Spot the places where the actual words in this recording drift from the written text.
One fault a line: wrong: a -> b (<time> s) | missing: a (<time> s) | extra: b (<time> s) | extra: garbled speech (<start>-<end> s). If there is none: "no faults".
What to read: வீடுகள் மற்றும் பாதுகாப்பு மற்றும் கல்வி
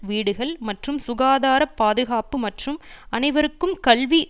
extra: சுகாதார (1.0 s)
extra: அனைவருக்கும் (3.1 s)